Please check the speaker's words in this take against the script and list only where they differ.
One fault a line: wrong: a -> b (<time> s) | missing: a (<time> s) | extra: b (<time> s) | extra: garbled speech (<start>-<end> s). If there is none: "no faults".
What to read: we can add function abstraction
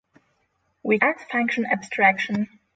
missing: can (1.0 s)